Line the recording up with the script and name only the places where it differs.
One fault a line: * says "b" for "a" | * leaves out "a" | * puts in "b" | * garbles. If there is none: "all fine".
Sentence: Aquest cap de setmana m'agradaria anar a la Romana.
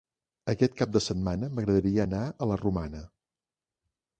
all fine